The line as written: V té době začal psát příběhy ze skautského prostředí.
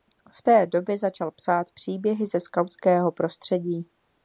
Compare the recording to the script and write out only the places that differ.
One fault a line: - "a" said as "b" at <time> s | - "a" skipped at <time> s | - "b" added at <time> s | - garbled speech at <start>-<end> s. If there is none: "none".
none